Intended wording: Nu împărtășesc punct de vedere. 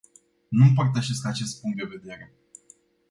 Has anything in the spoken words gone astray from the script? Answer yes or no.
yes